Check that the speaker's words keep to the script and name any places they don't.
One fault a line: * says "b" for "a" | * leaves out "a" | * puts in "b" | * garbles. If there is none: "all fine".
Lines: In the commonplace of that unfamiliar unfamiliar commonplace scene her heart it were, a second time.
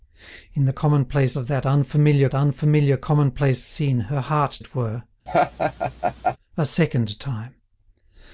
all fine